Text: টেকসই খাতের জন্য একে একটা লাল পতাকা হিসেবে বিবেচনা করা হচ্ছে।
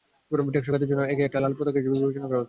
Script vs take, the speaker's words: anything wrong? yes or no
no